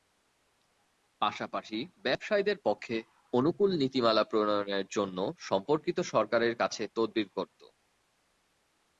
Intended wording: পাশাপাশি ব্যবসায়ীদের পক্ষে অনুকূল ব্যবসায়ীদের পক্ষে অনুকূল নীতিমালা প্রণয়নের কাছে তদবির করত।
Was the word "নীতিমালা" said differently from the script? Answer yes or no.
yes